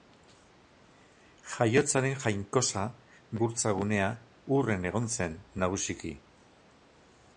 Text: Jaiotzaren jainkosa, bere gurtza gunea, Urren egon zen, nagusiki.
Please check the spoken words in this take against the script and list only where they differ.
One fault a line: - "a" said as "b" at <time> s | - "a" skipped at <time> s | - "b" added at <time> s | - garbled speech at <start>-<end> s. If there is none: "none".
- "bere" skipped at 2.9 s